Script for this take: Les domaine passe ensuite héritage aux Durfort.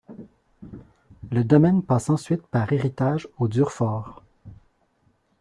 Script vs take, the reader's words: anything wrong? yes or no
yes